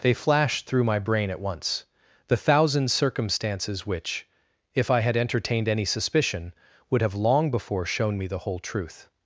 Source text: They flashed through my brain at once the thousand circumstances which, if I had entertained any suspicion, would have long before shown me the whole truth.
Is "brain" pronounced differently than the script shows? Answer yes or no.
no